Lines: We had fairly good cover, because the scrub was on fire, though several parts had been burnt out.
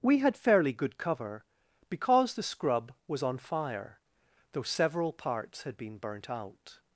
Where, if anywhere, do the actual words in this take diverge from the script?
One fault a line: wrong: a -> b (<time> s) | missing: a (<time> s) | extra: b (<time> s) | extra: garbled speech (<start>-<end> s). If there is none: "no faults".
no faults